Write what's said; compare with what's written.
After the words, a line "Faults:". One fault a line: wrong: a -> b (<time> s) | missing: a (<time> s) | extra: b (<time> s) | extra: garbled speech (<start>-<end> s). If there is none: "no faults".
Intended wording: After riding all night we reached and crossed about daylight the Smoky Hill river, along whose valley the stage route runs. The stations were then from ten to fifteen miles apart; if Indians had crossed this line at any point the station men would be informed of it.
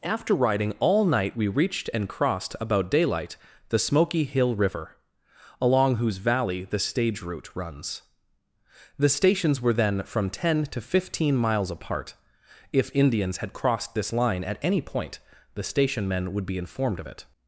After riding all night we reached and crossed about daylight the Smoky Hill river, along whose valley the stage route runs. The stations were then from ten to fifteen miles apart; if Indians had crossed this line at any point the station men would be informed of it.
Faults:
no faults